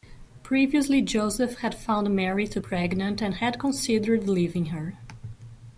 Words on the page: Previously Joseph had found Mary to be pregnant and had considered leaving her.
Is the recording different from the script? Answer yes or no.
yes